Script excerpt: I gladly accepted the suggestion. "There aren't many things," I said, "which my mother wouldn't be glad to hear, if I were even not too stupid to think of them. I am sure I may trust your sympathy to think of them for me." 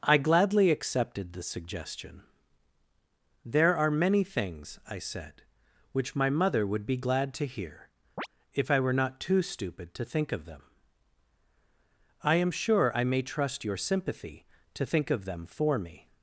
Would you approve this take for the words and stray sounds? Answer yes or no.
no